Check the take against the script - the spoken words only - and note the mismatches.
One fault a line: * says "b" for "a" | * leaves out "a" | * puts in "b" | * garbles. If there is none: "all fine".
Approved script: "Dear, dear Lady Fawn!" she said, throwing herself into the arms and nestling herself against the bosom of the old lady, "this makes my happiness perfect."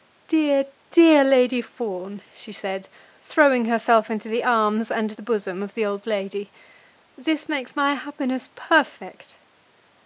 * leaves out "nestling herself against"